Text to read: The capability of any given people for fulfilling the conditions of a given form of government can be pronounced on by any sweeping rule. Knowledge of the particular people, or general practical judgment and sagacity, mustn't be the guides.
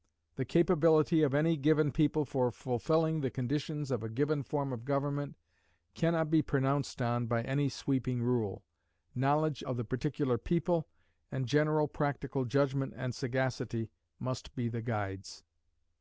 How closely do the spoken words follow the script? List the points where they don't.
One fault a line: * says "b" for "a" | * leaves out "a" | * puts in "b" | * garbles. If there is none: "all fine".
* puts in "not"
* says "and" for "or"
* says "must" for "mustn't"